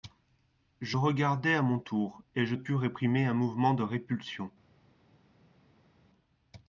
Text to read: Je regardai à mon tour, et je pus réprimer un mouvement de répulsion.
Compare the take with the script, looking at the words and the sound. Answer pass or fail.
pass